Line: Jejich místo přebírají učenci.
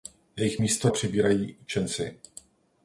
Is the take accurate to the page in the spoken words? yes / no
yes